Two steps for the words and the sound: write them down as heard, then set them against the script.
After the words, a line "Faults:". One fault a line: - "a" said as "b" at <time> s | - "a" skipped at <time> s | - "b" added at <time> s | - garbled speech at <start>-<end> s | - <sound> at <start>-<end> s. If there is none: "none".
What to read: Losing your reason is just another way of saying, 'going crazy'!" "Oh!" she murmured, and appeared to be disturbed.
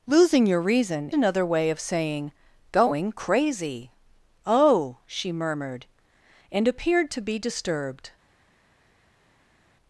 Losing your reason another way of saying, 'going crazy'!" "Oh!" she murmured, and appeared to be disturbed.
Faults:
- "is just" skipped at 1.1 s